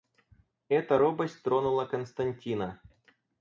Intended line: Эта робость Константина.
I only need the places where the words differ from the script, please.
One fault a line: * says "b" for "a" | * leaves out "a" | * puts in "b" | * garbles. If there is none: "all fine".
* puts in "тронула"